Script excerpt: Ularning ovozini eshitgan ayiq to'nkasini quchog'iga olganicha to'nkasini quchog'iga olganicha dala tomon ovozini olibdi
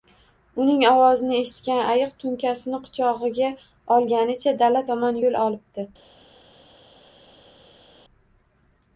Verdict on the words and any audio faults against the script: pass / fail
fail